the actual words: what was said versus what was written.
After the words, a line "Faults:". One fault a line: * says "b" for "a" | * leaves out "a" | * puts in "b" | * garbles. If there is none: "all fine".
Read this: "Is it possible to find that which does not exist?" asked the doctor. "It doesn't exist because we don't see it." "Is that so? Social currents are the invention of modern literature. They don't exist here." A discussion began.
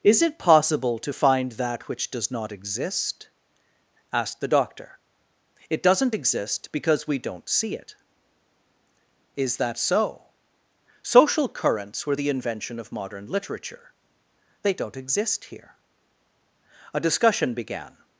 "Is it possible to find that which does not exist?" asked the doctor. "It doesn't exist because we don't see it." "Is that so? Social currents were the invention of modern literature. They don't exist here." A discussion began.
Faults:
* says "were" for "are"